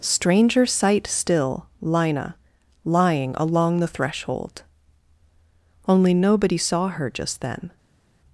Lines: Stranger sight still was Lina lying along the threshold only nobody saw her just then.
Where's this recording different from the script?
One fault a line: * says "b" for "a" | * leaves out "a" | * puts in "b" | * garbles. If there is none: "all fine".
* leaves out "was"